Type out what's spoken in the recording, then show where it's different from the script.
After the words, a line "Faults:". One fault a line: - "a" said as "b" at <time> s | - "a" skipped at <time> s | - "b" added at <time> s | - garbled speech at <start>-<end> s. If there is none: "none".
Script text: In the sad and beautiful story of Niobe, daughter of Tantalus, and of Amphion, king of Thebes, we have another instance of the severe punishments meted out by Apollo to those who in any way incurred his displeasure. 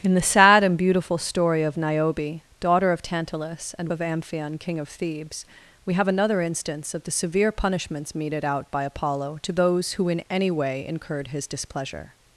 In the sad and beautiful story of Niobe, daughter of Tantalus, and of Amphion, king of Thebes, we have another instance of the severe punishments meted out by Apollo to those who in any way incurred his displeasure.
Faults:
none